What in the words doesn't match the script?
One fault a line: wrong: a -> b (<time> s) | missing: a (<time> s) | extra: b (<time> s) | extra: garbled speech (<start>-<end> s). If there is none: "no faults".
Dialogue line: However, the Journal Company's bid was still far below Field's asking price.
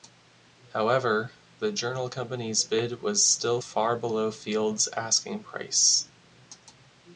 no faults